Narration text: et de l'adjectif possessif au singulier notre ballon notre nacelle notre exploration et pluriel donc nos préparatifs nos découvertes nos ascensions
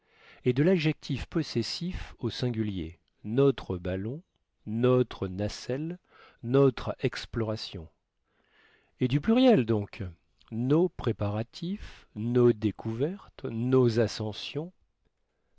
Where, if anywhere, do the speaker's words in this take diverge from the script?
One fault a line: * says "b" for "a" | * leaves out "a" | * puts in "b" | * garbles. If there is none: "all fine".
* puts in "du"